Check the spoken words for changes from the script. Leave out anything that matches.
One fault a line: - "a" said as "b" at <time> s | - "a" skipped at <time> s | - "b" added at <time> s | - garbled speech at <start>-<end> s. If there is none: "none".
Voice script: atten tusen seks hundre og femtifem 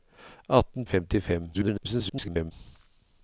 - "tusen seks hundre" skipped at 0.8 s
- garbled speech at 1.5-2.5 s